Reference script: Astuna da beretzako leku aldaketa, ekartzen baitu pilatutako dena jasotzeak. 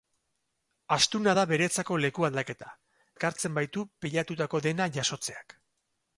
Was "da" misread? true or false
false